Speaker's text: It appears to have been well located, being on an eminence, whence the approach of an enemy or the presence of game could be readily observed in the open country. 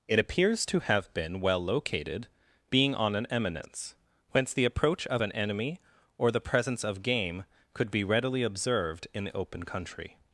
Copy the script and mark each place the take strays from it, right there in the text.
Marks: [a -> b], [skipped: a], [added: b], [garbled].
It appears to have been well located, being on an eminence, whence the approach of an enemy or the presence of game could be readily observed in the open country.